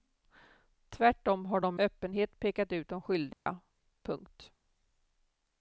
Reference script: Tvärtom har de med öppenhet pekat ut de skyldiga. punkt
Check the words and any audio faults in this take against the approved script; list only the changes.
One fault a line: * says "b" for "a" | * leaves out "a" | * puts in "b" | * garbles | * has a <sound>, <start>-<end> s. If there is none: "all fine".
* leaves out "med"
* has a dropout, 3.3-3.5 s